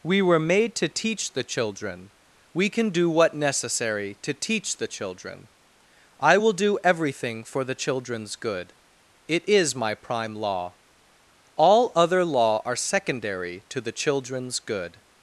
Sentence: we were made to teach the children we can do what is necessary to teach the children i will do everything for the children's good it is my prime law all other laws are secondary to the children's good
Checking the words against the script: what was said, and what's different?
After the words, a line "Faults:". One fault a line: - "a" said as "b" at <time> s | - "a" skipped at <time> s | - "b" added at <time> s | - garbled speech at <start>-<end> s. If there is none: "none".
we were made to teach the children we can do what necessary to teach the children i will do everything for the children's good it is my prime law all other law are secondary to the children's good
Faults:
- "is" skipped at 3.4 s
- "laws" said as "law" at 12.2 s